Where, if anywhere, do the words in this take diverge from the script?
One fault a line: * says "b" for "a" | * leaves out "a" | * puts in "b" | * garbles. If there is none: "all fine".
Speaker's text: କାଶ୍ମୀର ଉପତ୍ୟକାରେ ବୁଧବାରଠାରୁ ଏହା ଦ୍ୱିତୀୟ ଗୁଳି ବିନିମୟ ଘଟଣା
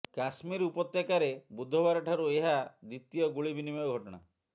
all fine